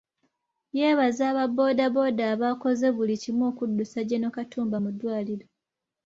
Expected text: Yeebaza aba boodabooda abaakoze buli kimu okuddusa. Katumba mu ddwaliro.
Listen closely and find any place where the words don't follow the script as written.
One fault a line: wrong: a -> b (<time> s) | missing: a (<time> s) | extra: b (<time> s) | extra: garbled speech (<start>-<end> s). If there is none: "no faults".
extra: Gen (4.1 s)